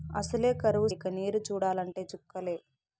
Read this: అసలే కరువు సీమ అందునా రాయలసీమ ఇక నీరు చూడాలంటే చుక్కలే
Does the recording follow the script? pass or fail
fail